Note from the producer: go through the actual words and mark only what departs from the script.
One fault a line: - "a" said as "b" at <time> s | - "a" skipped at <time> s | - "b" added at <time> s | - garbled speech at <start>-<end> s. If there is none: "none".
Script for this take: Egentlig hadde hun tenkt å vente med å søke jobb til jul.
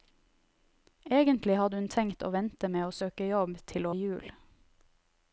none